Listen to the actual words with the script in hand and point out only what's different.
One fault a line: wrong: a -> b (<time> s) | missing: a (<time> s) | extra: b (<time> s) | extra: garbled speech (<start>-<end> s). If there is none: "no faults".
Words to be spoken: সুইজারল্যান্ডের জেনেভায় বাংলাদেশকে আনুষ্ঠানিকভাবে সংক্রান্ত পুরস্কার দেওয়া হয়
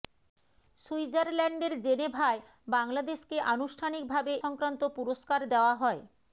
no faults